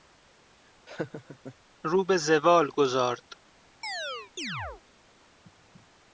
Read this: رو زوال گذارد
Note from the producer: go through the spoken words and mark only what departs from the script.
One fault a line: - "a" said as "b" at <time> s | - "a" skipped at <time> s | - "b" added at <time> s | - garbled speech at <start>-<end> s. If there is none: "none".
- "به" added at 2.0 s